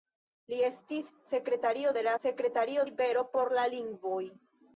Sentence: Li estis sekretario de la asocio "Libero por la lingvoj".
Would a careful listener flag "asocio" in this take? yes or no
yes